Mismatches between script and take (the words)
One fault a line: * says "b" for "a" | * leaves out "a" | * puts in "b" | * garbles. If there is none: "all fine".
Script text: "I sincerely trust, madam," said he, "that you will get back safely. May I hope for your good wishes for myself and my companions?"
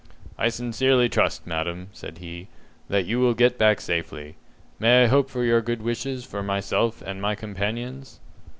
all fine